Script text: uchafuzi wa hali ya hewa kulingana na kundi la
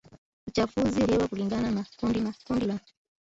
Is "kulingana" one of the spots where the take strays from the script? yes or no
yes